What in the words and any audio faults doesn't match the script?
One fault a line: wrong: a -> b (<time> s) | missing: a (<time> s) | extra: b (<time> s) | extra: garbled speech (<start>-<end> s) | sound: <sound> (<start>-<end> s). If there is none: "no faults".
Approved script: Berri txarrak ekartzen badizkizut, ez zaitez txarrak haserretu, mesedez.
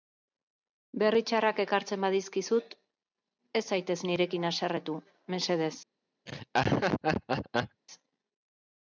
wrong: txarrak -> nirekin (4.1 s)
sound: laugh (6.3-7.8 s)